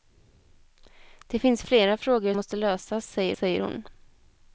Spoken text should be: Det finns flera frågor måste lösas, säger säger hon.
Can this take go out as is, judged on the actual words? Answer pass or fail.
pass